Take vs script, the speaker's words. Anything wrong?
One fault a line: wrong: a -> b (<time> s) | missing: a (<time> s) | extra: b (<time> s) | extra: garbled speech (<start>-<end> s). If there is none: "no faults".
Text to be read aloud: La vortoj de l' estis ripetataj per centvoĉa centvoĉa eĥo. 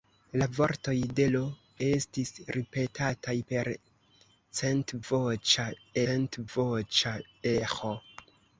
no faults